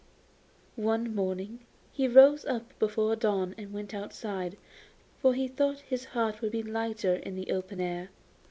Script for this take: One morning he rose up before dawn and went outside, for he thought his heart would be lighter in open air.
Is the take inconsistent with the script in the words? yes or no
yes